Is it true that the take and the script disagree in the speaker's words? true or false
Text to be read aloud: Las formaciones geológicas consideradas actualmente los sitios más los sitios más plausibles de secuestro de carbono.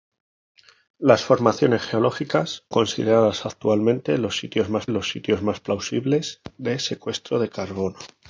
false